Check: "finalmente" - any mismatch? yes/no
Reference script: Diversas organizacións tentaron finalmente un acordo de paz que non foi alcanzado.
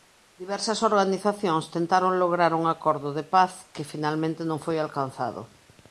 yes